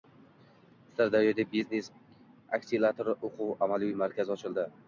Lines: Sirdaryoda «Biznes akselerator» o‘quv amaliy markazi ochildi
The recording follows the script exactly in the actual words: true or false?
true